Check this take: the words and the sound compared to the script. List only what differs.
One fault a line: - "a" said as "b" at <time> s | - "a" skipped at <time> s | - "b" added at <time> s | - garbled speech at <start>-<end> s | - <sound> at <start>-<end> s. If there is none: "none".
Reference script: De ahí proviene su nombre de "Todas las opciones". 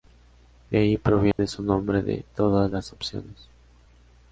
- dropout at 1.3-1.4 s